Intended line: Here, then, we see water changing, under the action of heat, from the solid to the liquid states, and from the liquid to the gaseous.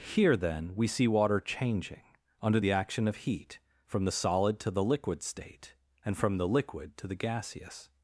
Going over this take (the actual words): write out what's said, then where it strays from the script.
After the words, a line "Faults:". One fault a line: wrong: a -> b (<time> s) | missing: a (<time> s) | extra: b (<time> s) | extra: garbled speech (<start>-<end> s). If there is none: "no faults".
Here, then, we see water changing, under the action of heat, from the solid to the liquid state, and from the liquid to the gaseous.
Faults:
wrong: states -> state (5.2 s)